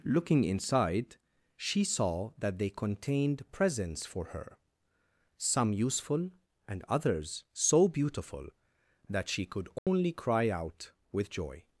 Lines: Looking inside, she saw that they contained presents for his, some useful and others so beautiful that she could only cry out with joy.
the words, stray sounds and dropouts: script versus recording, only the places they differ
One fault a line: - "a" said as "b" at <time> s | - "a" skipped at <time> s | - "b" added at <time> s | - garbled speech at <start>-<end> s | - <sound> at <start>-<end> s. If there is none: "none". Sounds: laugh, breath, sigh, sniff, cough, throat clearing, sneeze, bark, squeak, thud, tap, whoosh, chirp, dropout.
- "his" said as "her" at 4.2 s
- dropout at 9.8-9.9 s